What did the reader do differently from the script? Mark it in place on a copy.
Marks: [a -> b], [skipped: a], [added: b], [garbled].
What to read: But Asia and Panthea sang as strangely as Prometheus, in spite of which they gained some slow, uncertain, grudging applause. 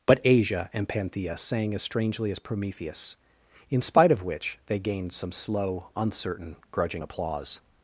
But Asia and Panthea sang as strangely as Prometheus, in spite of which they gained some slow, uncertain, grudging applause.